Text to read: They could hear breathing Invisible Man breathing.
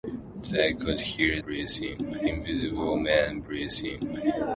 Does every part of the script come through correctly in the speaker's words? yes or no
yes